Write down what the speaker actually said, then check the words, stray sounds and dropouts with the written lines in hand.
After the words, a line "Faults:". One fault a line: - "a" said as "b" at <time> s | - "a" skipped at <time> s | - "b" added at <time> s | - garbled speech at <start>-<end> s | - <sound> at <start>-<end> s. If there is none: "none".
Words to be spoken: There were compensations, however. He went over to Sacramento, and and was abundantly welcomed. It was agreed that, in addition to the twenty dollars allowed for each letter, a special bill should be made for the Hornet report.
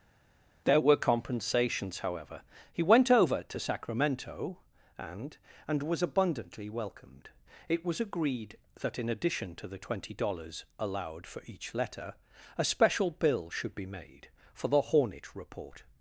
There were compensations, however. He went over to Sacramento, and and was abundantly welcomed. It was agreed that, in addition to the twenty dollars allowed for each letter, a special bill should be made for the Hornet report.
Faults:
none